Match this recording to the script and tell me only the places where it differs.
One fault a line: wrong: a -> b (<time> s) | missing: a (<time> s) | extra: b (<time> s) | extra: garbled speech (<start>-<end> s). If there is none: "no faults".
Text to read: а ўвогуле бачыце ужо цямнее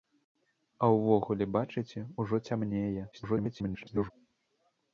extra: garbled speech (3.1-4.1 s)